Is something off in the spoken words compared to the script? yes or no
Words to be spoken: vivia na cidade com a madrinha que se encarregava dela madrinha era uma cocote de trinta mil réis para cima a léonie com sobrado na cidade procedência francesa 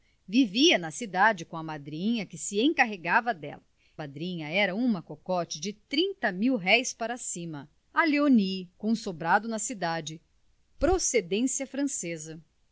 no